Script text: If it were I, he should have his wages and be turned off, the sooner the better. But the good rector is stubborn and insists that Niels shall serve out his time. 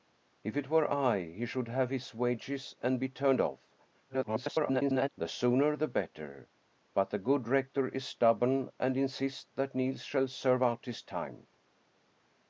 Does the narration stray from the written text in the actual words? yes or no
yes